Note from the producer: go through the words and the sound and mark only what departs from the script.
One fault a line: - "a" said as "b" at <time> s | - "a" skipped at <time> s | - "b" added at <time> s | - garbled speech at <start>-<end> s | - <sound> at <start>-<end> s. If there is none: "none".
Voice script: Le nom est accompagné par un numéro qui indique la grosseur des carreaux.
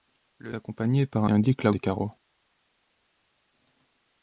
- "nom est" skipped at 0.6 s
- "numéro qui" skipped at 1.3 s
- "grosseur" skipped at 1.7 s